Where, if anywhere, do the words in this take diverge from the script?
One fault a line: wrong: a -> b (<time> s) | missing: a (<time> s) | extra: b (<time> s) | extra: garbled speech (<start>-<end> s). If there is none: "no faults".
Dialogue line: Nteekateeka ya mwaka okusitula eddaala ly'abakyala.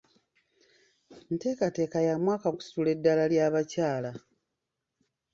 no faults